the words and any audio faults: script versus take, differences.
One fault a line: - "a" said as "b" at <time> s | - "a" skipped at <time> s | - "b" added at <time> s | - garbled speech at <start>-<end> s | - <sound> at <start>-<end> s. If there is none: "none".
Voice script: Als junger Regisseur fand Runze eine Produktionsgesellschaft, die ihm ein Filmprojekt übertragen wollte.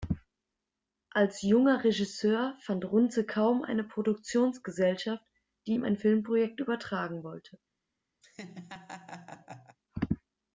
- "kaum" added at 3.2 s
- laugh at 8.2-9.8 s